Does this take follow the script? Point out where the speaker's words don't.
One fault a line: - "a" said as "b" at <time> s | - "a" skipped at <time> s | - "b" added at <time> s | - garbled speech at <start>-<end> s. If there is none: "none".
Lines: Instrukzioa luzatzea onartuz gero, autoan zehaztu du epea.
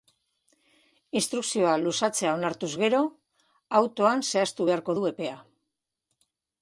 - "beharko" added at 4.7 s